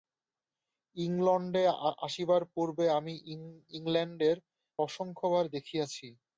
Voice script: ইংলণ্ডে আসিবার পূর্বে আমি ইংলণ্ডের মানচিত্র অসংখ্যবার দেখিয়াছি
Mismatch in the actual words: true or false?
true